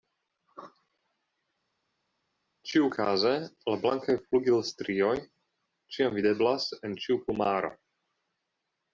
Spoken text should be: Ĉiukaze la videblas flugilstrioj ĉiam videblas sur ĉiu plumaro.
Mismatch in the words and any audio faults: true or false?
true